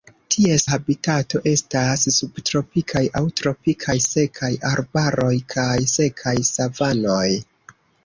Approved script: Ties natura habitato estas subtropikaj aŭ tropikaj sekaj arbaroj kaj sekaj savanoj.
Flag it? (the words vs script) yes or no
yes